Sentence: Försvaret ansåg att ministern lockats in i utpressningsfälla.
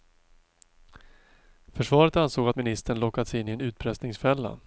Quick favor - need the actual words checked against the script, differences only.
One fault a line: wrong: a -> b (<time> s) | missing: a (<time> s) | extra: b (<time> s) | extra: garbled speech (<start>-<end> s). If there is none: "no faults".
extra: en (3.5 s)